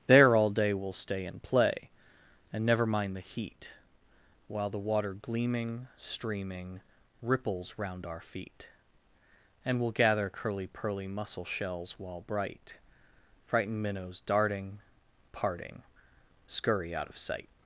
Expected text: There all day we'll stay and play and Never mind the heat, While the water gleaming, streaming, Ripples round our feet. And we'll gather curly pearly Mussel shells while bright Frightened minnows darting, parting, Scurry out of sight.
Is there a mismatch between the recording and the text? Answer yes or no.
no